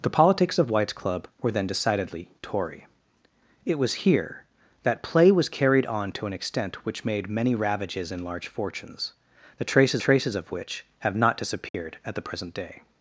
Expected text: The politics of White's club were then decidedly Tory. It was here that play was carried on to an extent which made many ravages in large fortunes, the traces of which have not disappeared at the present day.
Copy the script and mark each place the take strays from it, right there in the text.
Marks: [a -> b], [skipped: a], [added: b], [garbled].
The politics of White's club were then decidedly Tory. It was here that play was carried on to an extent which made many ravages in large fortunes, the traces [added: traces] of which have not disappeared at the present day.